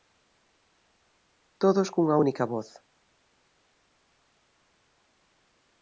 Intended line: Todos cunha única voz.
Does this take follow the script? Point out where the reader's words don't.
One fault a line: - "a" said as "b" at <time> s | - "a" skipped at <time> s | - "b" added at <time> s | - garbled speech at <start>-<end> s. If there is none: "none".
none